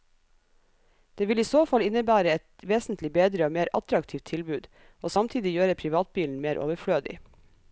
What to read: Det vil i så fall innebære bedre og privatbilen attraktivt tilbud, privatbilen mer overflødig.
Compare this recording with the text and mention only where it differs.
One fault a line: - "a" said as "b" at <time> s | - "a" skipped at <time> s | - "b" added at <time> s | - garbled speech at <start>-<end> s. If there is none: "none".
- "et vesentlig" added at 2.4 s
- "privatbilen" said as "mer" at 3.6 s
- "og samtidig gjøre" added at 5.0 s